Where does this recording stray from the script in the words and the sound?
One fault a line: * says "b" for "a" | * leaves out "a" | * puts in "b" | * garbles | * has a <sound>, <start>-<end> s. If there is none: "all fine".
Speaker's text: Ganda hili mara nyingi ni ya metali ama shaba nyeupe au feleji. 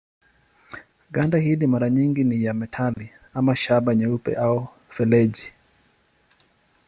* has a dropout, 2.9-3.0 s